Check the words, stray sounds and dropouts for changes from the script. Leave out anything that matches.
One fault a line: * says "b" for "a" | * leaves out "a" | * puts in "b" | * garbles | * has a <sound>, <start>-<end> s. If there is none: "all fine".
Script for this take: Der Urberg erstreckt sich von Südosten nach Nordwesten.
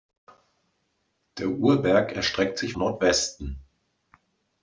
* leaves out "von Südosten nach"